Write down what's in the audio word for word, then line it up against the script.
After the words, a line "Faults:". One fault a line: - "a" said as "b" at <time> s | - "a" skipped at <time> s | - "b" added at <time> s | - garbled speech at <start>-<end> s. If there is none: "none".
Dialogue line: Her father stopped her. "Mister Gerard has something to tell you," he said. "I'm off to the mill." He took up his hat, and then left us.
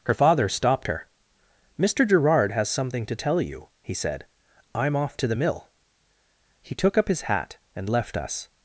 Her father stopped her. "Mister Gerard has something to tell you," he said. "I'm off to the mill." He took up his hat, and left us.
Faults:
- "then" skipped at 7.9 s